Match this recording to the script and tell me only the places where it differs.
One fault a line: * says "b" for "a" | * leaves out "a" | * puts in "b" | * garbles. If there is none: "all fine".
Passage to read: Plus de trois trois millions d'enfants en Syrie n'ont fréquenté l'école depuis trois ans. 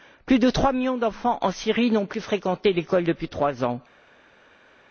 * leaves out "trois"
* puts in "plus"